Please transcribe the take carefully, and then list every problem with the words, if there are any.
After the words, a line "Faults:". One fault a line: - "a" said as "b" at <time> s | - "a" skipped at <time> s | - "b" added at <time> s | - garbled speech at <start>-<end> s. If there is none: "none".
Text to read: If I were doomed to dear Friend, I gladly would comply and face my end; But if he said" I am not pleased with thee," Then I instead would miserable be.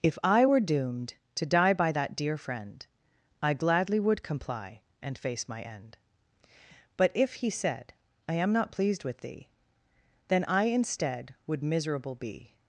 If I were doomed to die by that dear Friend, I gladly would comply and face my end; But if he said" I am not pleased with thee," Then I instead would miserable be.
Faults:
- "die by that" added at 1.5 s